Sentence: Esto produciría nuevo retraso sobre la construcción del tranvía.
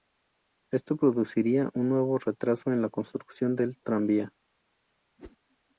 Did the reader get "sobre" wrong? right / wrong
wrong